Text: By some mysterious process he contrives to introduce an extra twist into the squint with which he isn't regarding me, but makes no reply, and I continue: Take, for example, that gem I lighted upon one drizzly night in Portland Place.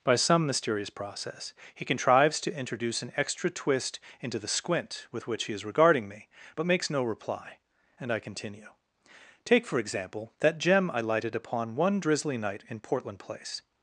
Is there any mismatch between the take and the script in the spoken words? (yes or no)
yes